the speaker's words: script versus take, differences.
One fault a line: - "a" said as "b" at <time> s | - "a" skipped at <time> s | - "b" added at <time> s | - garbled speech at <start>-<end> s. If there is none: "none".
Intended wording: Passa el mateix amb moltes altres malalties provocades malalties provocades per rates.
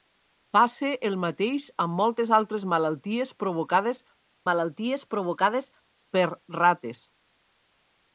none